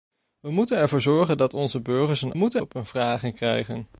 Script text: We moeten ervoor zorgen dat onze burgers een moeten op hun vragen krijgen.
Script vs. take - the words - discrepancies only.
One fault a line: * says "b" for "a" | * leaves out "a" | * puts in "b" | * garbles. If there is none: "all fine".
all fine